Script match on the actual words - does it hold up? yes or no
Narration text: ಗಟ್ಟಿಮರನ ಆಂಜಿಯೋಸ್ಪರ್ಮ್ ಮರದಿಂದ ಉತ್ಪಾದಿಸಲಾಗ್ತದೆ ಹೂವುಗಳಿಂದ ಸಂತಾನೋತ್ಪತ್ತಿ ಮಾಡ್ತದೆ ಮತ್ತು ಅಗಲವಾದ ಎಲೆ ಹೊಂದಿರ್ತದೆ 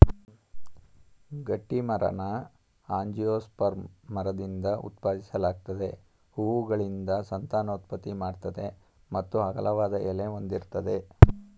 yes